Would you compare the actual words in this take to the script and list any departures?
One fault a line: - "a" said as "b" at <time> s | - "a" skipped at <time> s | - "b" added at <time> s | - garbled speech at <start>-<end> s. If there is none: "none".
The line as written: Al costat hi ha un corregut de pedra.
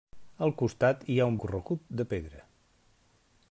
none